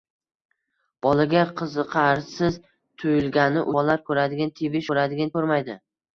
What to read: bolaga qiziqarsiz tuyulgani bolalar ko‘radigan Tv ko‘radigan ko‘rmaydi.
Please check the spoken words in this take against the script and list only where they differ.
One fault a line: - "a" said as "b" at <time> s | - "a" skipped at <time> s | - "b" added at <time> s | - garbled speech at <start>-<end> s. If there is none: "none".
none